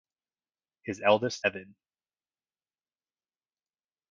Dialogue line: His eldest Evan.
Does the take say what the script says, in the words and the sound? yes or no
yes